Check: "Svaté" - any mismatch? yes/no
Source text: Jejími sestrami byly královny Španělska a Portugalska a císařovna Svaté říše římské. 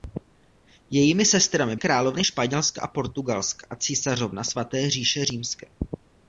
no